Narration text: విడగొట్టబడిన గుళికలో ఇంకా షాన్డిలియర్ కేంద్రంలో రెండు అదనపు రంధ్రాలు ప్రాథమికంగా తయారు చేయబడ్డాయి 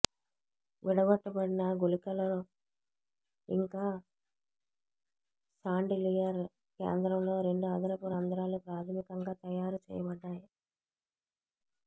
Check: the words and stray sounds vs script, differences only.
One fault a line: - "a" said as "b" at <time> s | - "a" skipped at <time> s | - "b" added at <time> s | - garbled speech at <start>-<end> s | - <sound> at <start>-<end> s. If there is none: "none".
none